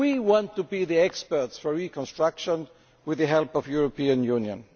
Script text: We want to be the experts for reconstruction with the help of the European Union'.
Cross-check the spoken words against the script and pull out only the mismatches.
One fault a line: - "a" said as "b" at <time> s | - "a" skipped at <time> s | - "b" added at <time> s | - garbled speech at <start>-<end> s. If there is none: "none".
none